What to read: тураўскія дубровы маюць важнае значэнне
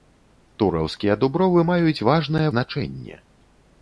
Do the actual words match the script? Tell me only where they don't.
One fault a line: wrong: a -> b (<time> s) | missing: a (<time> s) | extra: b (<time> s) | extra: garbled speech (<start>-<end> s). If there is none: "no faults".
no faults